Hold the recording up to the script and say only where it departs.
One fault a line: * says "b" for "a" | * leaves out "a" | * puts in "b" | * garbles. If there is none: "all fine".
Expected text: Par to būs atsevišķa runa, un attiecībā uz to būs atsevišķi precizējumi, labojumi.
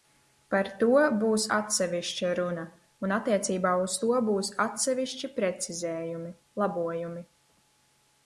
all fine